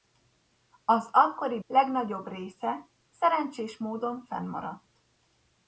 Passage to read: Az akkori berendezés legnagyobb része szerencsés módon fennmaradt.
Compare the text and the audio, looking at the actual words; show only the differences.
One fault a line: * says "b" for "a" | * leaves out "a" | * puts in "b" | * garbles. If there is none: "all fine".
* leaves out "berendezés"